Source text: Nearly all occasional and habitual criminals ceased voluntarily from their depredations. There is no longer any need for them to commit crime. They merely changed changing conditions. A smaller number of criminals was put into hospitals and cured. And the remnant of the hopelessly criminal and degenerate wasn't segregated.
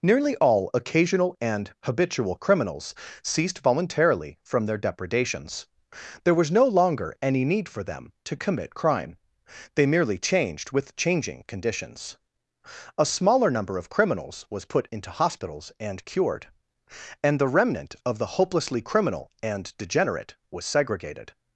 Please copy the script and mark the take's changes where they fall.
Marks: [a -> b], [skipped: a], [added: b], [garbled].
Nearly all occasional and habitual criminals ceased voluntarily from their depredations. There [is -> was] no longer any need for them to commit crime. They merely changed [added: with] changing conditions. A smaller number of criminals was put into hospitals and cured. And the remnant of the hopelessly criminal and degenerate [wasn't -> was] segregated.